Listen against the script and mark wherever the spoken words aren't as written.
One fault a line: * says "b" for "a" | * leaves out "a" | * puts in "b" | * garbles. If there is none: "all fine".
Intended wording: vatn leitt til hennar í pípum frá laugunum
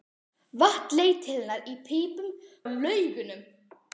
* leaves out "frá"